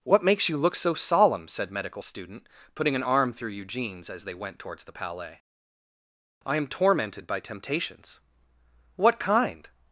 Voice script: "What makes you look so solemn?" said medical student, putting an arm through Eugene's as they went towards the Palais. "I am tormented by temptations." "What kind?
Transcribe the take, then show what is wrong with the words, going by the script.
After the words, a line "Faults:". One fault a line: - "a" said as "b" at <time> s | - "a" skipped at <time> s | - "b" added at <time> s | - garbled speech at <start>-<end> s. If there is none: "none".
"What makes you look so solemn?" said medical student, putting an arm through Eugene's as they went towards the Palais. "I am tormented by temptations." "What kind?
Faults:
none